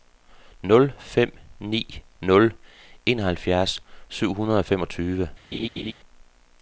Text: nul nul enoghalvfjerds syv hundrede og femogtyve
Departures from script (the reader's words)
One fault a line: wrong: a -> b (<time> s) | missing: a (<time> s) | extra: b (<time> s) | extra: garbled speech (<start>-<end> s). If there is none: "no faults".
extra: fem ni (1.0 s)